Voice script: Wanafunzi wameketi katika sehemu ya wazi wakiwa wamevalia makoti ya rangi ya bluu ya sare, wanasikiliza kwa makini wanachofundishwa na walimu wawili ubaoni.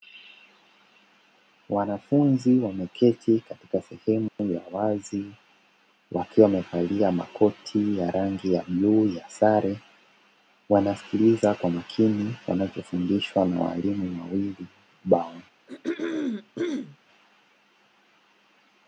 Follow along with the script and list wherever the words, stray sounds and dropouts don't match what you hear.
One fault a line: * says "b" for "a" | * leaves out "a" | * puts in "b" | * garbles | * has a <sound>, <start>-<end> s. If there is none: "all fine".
* has a dropout, 4.3-4.4 s
* has a throat clearing, 15.7-17.0 s